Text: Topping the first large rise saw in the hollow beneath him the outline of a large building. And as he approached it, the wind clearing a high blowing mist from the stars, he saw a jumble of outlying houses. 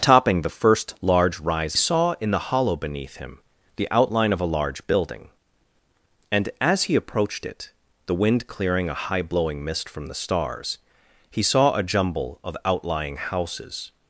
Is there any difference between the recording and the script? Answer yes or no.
no